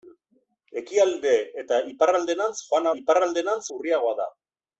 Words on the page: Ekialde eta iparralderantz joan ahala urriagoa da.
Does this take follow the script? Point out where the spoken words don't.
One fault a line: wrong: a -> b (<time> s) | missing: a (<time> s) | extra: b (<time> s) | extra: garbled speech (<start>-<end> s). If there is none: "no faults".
wrong: ahala -> iparralderantz (3.0 s)